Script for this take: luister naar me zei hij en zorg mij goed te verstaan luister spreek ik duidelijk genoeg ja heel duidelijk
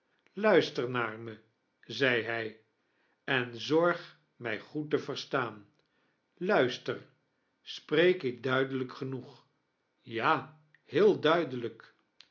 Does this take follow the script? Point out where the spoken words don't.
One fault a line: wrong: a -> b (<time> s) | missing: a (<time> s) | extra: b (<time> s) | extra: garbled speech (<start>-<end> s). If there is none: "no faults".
no faults